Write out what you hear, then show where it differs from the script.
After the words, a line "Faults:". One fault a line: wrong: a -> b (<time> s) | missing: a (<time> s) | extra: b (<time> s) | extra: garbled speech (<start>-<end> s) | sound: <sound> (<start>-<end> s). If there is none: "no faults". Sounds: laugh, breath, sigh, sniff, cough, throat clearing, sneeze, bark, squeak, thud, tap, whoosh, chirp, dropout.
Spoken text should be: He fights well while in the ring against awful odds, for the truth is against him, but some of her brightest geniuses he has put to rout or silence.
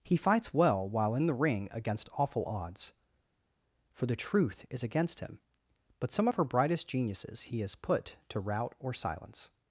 He fights well while in the ring against awful odds, for the truth is against him, but some of her brightest geniuses he has put to rout or silence.
Faults:
no faults